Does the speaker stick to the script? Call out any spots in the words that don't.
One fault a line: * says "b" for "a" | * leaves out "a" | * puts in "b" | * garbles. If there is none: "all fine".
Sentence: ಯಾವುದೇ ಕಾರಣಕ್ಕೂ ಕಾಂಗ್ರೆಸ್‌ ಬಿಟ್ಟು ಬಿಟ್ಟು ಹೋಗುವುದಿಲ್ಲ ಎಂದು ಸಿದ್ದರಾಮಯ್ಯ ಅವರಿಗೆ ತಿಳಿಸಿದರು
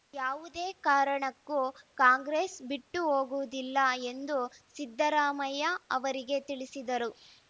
* leaves out "ಬಿಟ್ಟು"